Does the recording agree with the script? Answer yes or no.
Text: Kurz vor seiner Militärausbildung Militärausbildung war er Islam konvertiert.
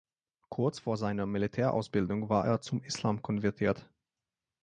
no